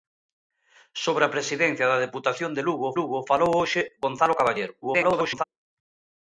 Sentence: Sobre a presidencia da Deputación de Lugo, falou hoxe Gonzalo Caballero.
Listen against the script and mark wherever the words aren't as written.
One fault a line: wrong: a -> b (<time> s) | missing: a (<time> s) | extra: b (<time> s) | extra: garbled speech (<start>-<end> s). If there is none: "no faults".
extra: Lugo (3.0 s)
extra: garbled speech (4.8-5.4 s)